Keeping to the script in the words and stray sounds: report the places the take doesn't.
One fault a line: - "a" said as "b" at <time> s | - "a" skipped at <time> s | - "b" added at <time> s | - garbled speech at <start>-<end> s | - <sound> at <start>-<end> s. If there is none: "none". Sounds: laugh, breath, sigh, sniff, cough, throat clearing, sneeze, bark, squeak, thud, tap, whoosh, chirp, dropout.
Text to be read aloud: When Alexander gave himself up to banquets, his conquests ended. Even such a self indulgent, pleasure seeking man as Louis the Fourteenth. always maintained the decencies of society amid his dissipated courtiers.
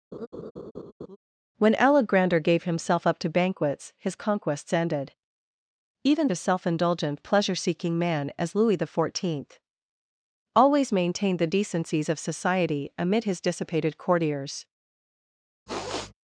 - laugh at 0.1-1.2 s
- "such" skipped at 6.3 s
- sniff at 15.7-16.1 s